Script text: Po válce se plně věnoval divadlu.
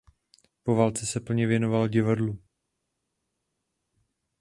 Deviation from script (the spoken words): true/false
false